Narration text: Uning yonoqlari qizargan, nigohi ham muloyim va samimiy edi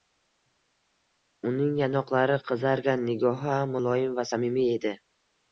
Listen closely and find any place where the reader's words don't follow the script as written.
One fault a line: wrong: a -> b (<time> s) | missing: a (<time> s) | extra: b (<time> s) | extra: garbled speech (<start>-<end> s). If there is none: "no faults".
no faults